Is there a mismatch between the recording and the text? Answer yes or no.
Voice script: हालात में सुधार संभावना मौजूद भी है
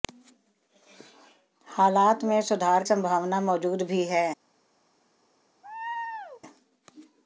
no